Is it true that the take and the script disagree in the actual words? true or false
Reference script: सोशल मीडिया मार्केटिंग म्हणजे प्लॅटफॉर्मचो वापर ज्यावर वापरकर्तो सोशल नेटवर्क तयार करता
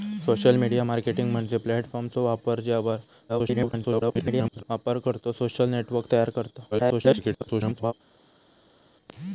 true